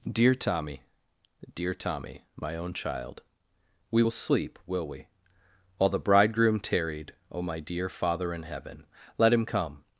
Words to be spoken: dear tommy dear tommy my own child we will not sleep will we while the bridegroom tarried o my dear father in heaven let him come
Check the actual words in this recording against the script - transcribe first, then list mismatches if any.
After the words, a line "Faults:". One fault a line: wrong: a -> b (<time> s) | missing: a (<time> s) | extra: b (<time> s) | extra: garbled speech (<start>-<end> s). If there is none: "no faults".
dear tommy dear tommy my own child we will sleep will we while the bridegroom tarried o my dear father in heaven let him come
Faults:
missing: not (4.1 s)